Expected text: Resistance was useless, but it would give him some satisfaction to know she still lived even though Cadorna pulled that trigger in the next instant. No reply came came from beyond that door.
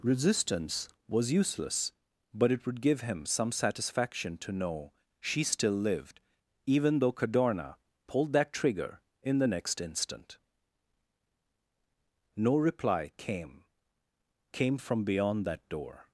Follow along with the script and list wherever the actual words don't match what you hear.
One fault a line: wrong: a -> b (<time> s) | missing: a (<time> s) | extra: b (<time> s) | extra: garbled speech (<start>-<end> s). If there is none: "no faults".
no faults